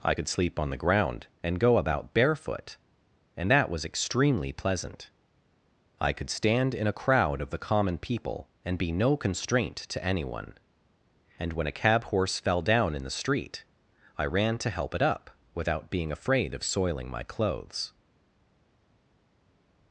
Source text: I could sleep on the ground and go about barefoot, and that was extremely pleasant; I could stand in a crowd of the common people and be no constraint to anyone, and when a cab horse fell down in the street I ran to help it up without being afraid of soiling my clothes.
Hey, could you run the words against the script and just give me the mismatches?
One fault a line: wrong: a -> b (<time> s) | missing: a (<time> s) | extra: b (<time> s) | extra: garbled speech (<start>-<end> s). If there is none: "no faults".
no faults